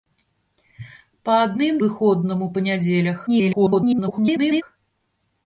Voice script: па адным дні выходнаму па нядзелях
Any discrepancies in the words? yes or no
yes